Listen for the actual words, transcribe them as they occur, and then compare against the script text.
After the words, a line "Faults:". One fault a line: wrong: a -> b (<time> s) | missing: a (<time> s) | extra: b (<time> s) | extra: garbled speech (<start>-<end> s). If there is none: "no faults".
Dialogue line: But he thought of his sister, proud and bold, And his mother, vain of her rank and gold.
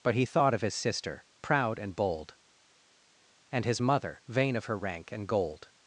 But he thought of his sister, proud and bold, And his mother, vain of her rank and gold.
Faults:
no faults